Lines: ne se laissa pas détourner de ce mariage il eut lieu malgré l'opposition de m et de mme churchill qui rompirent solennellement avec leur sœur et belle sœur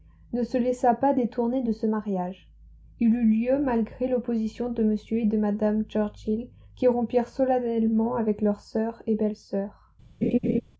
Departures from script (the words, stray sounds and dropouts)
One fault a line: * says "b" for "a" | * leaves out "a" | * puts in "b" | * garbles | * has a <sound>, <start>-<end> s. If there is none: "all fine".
* has a laugh, 10.2-10.6 s